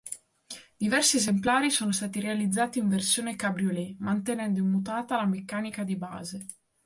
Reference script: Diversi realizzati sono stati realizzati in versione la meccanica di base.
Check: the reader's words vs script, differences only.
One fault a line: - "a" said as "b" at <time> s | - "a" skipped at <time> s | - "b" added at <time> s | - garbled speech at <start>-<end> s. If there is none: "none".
- "realizzati" said as "esemplari" at 1.2 s
- "cabriolet mantenendo immutata" added at 3.4 s